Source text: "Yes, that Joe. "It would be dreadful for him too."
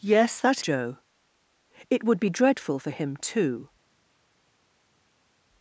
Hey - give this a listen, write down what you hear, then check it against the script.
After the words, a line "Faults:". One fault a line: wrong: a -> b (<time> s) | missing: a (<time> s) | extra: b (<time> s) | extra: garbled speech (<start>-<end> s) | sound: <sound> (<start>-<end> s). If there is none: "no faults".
"Yes, that Joe. "It would be dreadful for him too."
Faults:
no faults